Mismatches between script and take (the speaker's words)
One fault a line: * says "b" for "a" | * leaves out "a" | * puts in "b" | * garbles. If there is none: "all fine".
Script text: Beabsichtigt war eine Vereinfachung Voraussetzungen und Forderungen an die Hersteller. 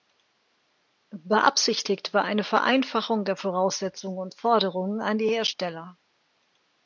* puts in "der"